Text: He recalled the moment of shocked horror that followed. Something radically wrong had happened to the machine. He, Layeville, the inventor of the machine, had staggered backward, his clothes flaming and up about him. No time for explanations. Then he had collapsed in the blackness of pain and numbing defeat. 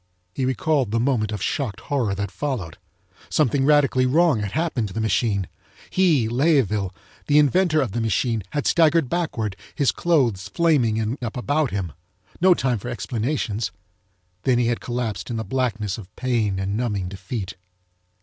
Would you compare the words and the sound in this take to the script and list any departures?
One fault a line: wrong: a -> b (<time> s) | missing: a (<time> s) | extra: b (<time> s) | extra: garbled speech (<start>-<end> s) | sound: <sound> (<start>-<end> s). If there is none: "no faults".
no faults